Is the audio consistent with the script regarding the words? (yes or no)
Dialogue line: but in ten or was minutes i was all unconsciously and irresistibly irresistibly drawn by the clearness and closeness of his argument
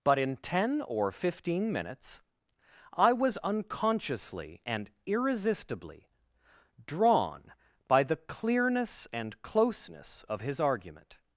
no